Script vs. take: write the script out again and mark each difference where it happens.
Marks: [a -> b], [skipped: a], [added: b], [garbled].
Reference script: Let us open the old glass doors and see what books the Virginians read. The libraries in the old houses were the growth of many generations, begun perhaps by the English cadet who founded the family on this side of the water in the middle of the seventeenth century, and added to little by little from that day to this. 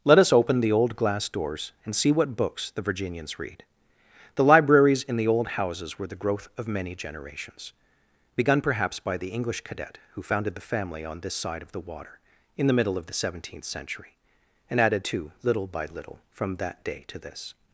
Let us open the old glass doors and see what books the Virginians read. The libraries in the old houses were the growth of many generations, begun perhaps by the English cadet who founded the family on this side of the water in the middle of the seventeenth century, and added to little by little from that day to this.